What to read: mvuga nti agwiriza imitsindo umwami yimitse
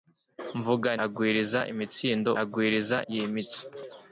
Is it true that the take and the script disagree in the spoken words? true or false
true